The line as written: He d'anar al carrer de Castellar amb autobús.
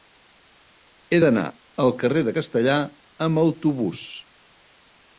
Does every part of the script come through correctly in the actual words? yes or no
yes